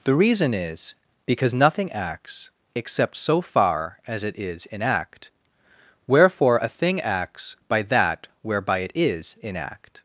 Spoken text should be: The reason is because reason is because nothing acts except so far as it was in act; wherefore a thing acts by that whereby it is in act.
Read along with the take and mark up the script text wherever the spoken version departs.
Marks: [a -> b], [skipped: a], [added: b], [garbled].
The reason is because [skipped: reason is because] nothing acts except so far as it [was -> is] in act; wherefore a thing acts by that whereby it is in act.